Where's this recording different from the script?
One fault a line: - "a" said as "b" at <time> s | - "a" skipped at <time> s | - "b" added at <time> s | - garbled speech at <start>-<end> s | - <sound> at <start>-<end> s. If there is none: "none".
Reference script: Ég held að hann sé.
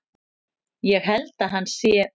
none